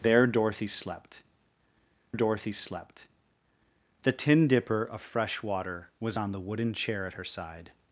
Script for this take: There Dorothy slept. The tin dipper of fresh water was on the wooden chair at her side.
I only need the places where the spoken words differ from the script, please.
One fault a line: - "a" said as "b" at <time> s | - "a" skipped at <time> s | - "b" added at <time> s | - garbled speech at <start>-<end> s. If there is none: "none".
- "Dorothy slept" added at 2.1 s